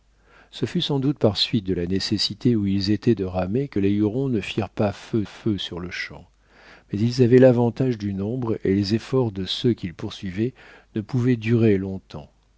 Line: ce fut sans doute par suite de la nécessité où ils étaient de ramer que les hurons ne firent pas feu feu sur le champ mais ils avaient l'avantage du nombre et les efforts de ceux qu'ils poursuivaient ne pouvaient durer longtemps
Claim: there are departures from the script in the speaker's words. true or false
false